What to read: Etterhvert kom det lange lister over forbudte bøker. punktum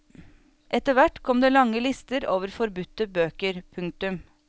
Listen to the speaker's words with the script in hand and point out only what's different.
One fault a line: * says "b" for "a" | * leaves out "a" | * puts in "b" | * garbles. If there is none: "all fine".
all fine